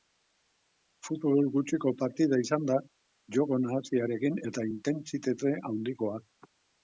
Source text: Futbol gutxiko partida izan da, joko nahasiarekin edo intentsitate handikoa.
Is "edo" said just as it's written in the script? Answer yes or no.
no